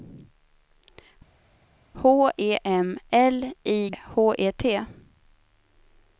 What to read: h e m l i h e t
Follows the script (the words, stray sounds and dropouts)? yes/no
yes